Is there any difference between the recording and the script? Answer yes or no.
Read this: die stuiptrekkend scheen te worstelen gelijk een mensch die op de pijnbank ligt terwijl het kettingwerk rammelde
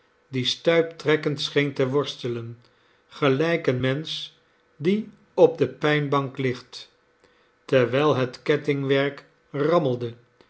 no